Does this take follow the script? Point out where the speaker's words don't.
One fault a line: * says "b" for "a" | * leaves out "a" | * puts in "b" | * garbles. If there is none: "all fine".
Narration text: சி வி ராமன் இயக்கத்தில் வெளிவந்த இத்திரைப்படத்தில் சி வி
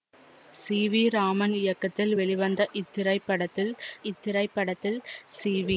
* puts in "இத்திரைப்படத்தில்"